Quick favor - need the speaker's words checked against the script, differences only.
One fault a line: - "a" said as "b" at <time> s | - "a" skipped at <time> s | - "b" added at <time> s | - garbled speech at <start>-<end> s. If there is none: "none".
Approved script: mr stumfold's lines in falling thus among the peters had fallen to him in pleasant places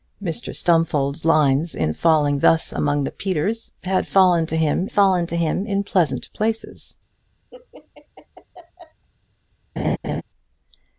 - "fallen to him" added at 4.9 s